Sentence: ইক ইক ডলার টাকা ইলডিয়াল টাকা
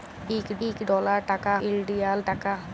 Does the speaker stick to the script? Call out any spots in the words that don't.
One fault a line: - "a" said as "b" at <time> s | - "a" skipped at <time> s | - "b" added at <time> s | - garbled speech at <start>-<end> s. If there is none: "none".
none